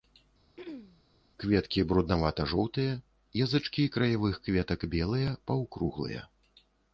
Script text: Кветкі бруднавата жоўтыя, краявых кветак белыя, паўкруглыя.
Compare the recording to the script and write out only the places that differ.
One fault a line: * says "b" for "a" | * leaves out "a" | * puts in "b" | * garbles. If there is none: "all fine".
* puts in "язычкі"